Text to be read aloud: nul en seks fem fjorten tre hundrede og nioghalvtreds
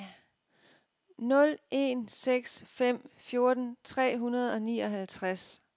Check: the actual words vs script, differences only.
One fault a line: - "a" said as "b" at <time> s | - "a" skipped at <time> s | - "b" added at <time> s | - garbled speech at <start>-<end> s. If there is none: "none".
none